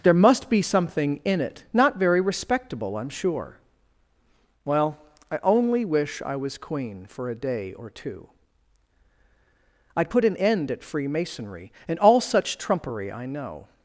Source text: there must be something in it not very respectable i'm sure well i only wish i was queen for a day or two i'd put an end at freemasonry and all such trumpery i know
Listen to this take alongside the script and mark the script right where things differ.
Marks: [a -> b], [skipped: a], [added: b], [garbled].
there must be something in it not very respectable i'm sure well i only wish i was queen for a day or two i'd put an end at freemasonry and all such trumpery i know